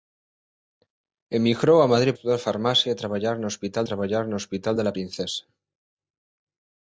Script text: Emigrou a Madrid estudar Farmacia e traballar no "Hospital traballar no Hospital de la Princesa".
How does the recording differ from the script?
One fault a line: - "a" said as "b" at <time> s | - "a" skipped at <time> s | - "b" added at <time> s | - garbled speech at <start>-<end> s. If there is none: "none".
none